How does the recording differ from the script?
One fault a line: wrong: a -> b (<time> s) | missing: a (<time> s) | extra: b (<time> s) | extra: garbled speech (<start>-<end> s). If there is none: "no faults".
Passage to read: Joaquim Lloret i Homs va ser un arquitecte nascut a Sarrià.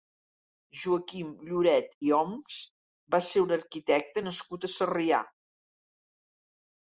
no faults